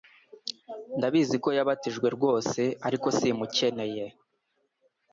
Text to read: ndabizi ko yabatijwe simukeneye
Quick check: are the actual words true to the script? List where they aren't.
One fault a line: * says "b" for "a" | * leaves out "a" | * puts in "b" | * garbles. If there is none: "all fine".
* puts in "rwose ariko"